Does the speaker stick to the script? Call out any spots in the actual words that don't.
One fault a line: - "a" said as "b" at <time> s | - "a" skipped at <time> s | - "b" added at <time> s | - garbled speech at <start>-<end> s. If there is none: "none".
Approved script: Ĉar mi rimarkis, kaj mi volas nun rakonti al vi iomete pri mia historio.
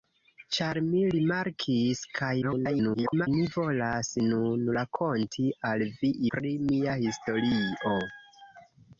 - garbled speech at 2.4-3.3 s
- "iomete" skipped at 6.1 s